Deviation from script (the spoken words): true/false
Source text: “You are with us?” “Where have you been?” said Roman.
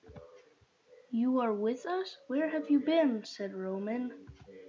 false